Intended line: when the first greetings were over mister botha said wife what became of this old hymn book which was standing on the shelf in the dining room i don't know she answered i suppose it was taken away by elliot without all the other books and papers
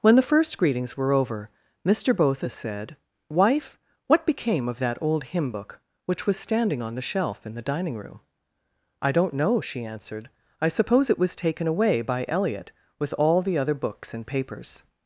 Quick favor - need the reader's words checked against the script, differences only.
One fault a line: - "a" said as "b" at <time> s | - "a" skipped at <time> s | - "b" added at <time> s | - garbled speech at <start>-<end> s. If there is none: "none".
- "this" said as "that" at 4.8 s
- "without" said as "with" at 13.0 s